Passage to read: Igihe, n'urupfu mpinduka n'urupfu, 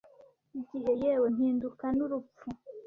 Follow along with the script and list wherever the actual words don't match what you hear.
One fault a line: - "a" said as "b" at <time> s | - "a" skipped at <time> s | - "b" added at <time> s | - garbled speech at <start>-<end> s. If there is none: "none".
- "n'urupfu" said as "yewe" at 1.0 s